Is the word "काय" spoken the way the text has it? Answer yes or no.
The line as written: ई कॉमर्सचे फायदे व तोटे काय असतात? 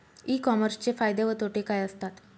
yes